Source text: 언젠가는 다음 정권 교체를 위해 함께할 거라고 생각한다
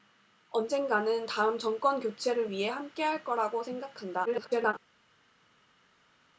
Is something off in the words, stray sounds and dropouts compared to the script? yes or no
yes